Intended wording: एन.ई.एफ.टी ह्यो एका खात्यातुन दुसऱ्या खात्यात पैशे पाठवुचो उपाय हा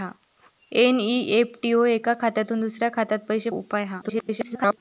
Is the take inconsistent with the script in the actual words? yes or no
yes